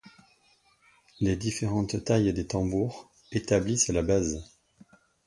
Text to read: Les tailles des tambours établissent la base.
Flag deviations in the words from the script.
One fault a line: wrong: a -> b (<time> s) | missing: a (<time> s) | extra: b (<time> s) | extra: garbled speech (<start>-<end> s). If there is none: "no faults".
extra: différentes (1.4 s)